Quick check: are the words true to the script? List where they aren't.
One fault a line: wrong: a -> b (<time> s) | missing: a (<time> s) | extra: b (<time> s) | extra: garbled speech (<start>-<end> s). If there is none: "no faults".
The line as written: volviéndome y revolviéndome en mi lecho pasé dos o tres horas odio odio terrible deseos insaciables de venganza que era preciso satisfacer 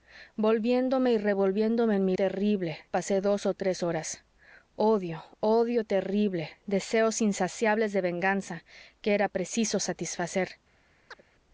wrong: lecho -> terrible (2.1 s)